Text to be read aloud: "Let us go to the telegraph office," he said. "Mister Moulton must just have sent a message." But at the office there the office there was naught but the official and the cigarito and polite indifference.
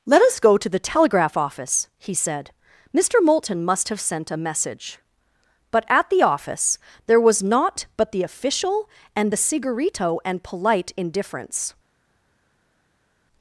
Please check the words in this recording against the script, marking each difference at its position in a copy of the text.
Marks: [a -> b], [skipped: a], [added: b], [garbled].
"Let us go to the telegraph office," he said. "Mister Moulton must [skipped: just] have sent a message." But at the office there [skipped: the office there] was naught but the official and the cigarito and polite indifference.